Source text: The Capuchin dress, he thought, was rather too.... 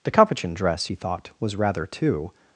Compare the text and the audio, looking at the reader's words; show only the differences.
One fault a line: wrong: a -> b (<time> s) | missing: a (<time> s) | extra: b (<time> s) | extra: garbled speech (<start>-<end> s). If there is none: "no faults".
no faults